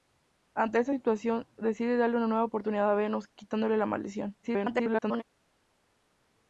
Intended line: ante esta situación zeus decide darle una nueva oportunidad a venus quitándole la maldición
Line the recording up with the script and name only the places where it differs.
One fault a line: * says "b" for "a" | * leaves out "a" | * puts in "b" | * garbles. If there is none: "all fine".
* leaves out "zeus"
* garbles